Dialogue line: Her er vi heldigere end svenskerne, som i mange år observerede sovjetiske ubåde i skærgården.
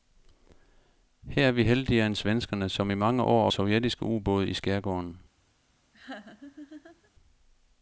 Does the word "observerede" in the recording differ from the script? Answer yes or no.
yes